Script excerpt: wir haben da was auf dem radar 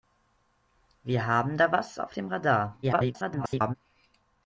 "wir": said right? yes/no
yes